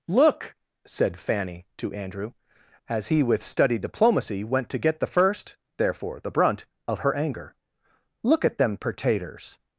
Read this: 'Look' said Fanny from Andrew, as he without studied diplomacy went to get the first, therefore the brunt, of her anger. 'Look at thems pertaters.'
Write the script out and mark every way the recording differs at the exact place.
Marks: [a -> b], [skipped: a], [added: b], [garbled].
'Look' said Fanny [from -> to] Andrew, as he [without -> with] studied diplomacy went to get the first, therefore the brunt, of her anger. 'Look at [thems -> them] pertaters.'